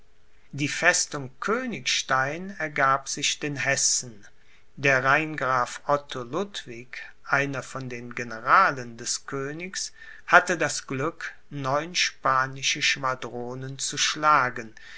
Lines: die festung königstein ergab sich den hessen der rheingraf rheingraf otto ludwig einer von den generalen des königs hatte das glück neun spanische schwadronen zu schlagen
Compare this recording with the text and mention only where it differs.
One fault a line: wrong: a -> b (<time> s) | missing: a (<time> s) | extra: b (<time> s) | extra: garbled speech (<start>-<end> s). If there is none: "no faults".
missing: rheingraf (5.8 s)